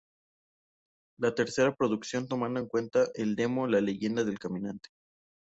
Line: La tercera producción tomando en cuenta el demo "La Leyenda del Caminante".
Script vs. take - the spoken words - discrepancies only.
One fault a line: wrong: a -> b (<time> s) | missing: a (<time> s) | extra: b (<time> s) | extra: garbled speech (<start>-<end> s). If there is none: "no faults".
no faults